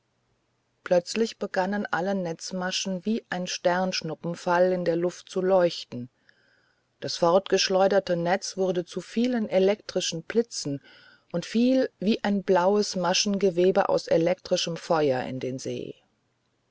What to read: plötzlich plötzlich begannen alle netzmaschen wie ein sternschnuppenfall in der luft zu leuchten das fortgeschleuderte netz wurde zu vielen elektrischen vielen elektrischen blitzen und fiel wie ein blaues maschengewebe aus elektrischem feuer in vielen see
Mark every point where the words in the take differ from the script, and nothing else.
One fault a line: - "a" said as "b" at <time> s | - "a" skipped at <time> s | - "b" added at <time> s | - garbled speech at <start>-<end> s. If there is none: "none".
- "plötzlich" skipped at 1.4 s
- "vielen elektrischen" skipped at 10.2 s
- "vielen" said as "den" at 15.4 s